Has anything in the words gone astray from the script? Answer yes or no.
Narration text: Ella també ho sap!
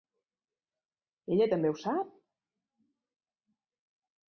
no